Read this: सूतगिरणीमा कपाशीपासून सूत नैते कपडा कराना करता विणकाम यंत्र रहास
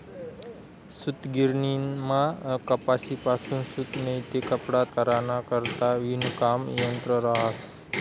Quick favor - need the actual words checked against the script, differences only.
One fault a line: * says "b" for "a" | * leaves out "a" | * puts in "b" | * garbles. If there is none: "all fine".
all fine